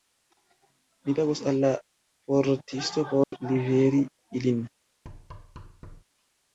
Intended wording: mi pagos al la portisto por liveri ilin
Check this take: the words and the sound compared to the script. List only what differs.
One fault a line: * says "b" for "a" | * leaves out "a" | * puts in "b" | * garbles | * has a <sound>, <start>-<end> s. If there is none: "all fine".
* has a dropout, 3.2-3.3 s
* has a thud, 5.0-6.0 s